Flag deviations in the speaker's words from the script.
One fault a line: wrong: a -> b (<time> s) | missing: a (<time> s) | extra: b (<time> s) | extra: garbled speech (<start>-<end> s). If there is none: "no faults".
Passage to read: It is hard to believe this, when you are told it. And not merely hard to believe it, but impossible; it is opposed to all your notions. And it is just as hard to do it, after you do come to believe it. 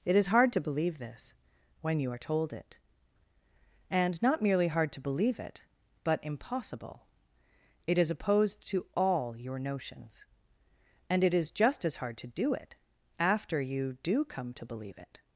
no faults